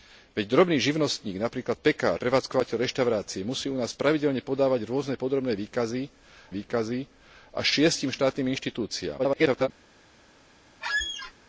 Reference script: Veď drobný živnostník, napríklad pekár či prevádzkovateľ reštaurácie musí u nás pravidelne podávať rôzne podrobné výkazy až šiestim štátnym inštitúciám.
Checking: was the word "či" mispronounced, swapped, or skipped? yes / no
yes